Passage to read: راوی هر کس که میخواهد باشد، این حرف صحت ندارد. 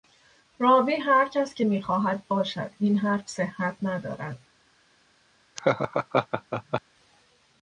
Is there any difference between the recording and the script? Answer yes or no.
no